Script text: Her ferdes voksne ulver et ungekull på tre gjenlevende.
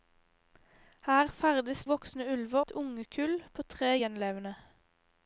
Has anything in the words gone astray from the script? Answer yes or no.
no